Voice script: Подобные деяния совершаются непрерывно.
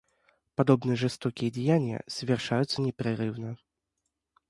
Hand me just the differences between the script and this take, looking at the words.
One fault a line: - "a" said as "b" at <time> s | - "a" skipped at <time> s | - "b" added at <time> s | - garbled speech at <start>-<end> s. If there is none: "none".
- "жестокие" added at 0.9 s